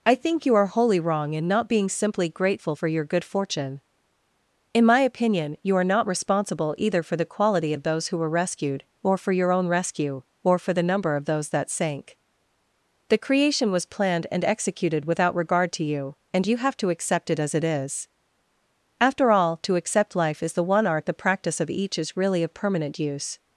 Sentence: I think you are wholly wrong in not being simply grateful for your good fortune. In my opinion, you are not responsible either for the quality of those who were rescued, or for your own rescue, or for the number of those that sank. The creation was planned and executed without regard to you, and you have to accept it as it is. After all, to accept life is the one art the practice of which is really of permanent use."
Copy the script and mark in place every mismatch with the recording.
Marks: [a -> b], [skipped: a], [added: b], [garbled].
I think you are wholly wrong in not being simply grateful for your good fortune. In my opinion, you are not responsible either for the quality of those who were rescued, or for your own rescue, or for the number of those that sank. The creation was planned and executed without regard to you, and you have to accept it as it is. After all, to accept life is the one art the practice of [which -> each] is really of permanent use."